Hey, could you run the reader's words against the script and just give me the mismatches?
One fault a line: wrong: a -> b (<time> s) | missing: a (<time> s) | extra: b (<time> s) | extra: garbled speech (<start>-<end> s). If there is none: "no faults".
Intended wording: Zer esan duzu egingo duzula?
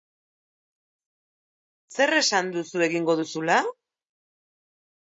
no faults